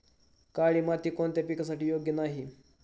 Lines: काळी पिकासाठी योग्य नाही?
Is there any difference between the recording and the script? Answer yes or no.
yes